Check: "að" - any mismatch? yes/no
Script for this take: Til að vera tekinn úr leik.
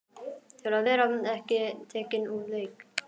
no